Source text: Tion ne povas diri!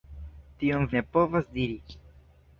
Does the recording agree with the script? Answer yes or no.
yes